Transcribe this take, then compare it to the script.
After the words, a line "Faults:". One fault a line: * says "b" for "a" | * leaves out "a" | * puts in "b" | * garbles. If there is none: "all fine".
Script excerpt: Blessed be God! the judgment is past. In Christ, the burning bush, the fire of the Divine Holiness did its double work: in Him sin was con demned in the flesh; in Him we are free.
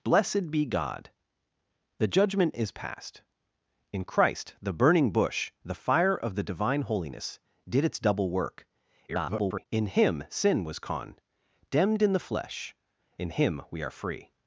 Blessed be God! the judgment is past. In Christ, the burning bush, the fire of the Divine Holiness did its double work: [garbled] in Him sin was con demned in the flesh; in Him we are free.
Faults:
* garbles